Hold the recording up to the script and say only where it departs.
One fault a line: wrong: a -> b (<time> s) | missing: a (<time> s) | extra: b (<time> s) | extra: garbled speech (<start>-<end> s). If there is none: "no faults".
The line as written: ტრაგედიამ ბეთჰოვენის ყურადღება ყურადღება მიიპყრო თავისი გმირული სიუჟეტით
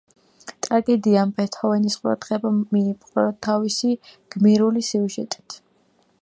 missing: ყურადღება (2.5 s)